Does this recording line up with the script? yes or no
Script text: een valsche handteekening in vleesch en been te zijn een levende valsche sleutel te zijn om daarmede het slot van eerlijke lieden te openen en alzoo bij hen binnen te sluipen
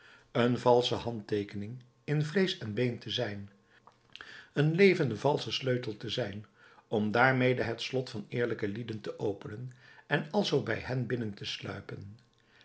yes